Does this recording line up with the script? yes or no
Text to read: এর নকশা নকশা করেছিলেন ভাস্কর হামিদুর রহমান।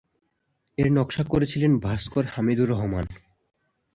no